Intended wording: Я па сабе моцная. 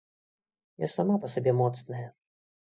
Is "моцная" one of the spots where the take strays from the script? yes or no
no